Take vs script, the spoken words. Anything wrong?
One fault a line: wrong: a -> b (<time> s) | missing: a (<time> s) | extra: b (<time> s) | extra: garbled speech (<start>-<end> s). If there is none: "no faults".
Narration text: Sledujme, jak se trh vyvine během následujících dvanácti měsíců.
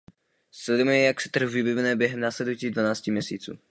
no faults